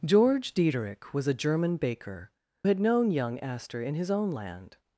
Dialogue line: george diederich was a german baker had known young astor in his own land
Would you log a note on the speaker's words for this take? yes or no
no